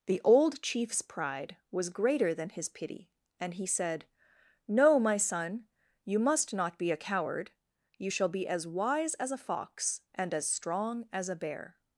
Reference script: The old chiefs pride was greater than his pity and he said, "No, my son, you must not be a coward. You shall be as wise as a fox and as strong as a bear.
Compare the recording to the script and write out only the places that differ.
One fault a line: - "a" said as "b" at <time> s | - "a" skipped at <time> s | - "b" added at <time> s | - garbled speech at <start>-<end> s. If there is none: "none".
none